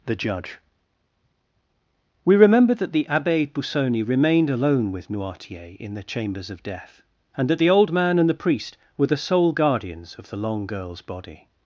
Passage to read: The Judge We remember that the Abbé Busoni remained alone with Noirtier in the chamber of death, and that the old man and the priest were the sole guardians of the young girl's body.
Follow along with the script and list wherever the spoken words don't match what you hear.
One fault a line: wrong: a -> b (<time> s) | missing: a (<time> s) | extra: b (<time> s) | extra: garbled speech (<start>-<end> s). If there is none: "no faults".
wrong: chamber -> chambers (6.0 s)
wrong: young -> long (10.4 s)